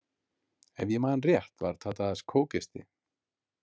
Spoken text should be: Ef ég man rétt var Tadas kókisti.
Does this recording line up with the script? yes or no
yes